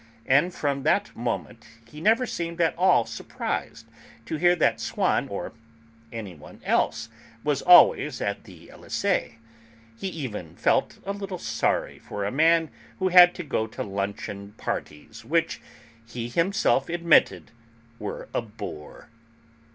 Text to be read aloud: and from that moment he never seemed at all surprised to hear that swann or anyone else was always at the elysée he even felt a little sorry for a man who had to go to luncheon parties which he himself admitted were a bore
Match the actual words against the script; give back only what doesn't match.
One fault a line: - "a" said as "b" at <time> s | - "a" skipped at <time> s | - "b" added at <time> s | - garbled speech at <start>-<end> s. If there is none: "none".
none